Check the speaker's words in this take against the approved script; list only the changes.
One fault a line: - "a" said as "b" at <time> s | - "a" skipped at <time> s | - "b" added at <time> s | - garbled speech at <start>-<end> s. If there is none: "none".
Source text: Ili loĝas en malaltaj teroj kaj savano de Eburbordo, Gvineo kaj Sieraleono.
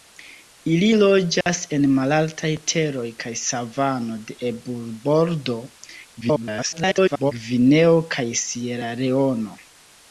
- garbled speech at 6.2-7.3 s